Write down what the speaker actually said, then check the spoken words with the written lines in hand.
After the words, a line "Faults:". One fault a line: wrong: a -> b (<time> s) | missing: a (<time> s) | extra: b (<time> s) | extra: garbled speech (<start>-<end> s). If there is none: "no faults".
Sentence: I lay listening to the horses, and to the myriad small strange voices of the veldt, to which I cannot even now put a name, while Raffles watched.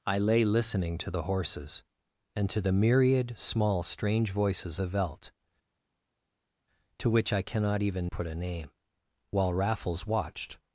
I lay listening to the horses, and to the myriad small strange voices the veldt, to which I cannot even put a name, while Raffles watched.
Faults:
missing: of (4.8 s)
missing: now (8.1 s)